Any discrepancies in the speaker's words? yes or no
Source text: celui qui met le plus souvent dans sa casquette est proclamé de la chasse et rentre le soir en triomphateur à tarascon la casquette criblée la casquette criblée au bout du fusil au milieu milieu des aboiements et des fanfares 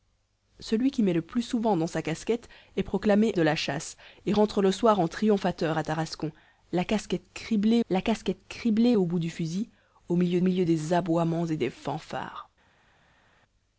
no